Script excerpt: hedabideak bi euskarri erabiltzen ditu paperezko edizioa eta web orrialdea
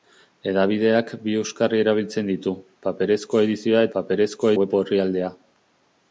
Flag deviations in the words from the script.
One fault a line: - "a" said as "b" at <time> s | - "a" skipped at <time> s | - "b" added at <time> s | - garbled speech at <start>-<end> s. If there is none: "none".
- "eta" said as "paperezko" at 4.0 s